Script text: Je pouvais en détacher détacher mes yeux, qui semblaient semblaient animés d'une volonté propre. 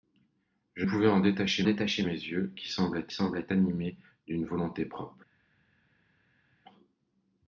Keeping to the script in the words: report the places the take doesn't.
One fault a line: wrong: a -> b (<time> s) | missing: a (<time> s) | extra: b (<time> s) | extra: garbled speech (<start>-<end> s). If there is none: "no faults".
no faults